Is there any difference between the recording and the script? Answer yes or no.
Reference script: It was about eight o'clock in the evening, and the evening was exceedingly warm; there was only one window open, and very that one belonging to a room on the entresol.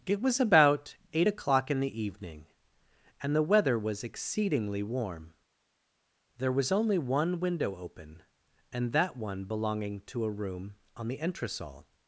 yes